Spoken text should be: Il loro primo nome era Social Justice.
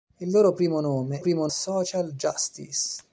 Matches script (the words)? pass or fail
fail